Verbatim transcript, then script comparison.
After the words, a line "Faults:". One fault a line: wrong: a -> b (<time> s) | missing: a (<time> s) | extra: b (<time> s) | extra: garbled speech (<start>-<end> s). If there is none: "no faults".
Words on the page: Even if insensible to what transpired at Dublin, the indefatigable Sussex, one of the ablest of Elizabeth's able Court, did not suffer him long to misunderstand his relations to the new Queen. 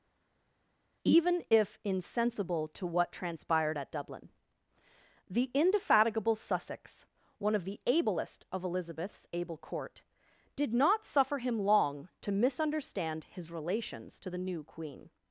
Even if insensible to what transpired at Dublin, the indefatigable Sussex, one of the ablest of Elizabeth's able Court, did not suffer him long to misunderstand his relations to the new Queen.
Faults:
no faults